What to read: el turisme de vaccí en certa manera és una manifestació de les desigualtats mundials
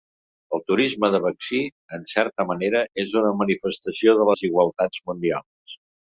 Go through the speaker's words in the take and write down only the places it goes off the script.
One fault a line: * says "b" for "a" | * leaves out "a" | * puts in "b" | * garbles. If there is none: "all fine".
* leaves out "les"